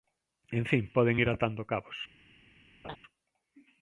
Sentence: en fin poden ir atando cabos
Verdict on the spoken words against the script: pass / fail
pass